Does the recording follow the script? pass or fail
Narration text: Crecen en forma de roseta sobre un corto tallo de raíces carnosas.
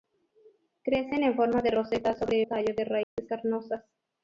fail